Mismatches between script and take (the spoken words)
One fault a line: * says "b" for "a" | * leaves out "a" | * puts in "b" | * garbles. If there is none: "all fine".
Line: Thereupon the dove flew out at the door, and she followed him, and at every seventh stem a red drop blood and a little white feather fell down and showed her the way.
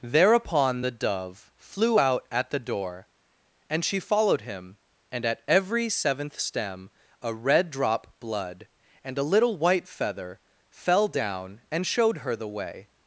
all fine